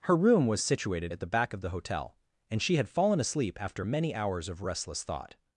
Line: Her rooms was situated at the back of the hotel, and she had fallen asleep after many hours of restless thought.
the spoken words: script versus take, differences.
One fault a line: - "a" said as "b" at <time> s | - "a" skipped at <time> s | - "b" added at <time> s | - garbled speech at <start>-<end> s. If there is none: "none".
- "rooms" said as "room" at 0.1 s